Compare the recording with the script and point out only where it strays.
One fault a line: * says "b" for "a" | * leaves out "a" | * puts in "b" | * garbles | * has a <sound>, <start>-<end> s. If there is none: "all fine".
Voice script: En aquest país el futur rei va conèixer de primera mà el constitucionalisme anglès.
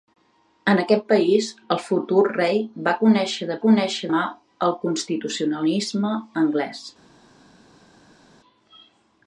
* says "conèixer" for "primera"